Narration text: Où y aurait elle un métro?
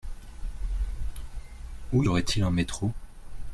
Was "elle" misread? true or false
true